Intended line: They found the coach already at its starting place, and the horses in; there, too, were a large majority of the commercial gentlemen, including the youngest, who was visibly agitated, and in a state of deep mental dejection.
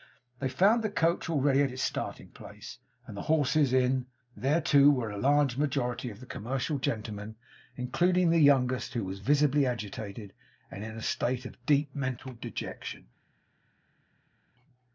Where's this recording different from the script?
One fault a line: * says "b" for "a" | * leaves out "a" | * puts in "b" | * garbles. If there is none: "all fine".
all fine